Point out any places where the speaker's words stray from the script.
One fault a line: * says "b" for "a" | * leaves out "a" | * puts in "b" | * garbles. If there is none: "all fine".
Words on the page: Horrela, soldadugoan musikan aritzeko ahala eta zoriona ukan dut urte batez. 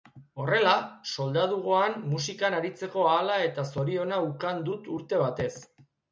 all fine